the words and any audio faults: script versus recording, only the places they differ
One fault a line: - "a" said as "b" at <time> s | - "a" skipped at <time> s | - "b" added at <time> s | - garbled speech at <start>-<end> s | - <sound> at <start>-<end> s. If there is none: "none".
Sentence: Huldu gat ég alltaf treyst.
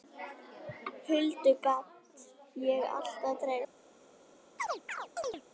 - chirp at 4.6-5.4 s